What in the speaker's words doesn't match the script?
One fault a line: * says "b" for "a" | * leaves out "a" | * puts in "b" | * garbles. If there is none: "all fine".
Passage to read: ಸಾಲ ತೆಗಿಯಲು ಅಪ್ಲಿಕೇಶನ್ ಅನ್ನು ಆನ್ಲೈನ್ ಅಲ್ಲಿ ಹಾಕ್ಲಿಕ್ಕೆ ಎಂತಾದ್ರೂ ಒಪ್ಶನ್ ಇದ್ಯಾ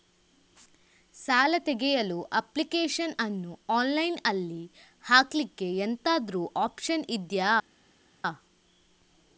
all fine